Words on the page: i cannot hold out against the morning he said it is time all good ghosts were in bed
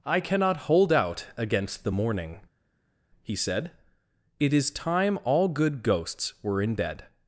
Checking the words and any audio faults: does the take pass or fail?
pass